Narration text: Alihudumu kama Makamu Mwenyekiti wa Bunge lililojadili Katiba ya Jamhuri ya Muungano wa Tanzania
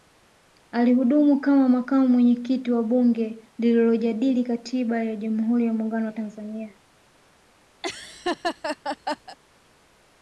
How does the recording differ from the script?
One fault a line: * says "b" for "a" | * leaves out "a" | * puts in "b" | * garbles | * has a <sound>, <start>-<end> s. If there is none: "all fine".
* has a laugh, 7.8-9.4 s